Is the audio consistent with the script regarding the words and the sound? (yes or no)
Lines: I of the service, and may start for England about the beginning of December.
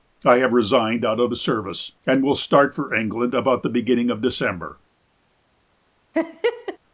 no